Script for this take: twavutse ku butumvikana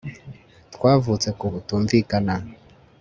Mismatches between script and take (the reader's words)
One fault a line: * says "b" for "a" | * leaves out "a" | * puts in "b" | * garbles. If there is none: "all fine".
all fine